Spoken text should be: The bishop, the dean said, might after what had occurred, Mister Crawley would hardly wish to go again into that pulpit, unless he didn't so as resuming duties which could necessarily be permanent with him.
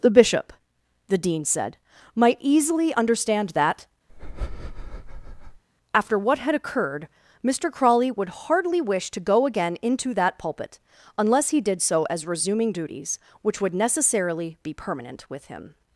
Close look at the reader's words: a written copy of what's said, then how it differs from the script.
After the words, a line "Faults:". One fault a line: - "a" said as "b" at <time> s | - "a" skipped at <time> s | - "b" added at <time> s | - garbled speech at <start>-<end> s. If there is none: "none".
The bishop, the dean said, might easily understand that, after what had occurred, Mister Crawley would hardly wish to go again into that pulpit, unless he did so as resuming duties which would necessarily be permanent with him.
Faults:
- "easily understand that" added at 2.4 s
- "didn't" said as "did" at 11.6 s
- "could" said as "would" at 13.6 s